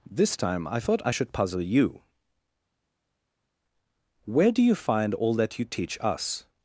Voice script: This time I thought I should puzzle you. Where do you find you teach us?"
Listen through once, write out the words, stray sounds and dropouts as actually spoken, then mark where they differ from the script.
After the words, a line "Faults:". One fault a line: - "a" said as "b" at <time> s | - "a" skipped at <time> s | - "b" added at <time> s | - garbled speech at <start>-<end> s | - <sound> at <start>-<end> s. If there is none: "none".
This time I thought I should puzzle you. Where do you find all that you teach us?"
Faults:
- "all that" added at 5.1 s